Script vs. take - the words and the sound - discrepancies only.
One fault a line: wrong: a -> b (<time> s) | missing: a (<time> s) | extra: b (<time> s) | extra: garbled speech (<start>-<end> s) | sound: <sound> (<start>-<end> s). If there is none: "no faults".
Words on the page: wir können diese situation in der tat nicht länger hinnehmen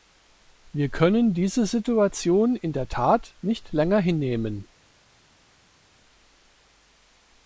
no faults